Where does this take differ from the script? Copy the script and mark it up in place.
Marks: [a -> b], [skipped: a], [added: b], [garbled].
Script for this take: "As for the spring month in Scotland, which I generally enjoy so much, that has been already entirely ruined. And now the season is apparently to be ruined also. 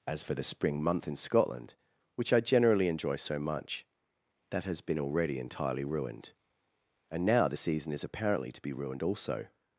"As for the spring month in Scotland, which I generally enjoy so much, that has been already entirely ruined. And now the season is apparently to be ruined also.